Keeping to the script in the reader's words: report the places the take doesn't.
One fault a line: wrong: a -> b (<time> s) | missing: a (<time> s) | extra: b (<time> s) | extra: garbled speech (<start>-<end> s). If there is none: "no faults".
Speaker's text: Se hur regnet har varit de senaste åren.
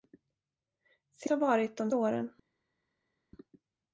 missing: hur regnet (1.3 s)
missing: senaste (1.9 s)